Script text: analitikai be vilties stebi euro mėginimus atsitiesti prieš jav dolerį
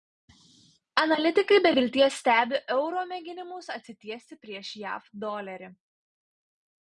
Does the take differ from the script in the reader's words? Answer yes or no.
no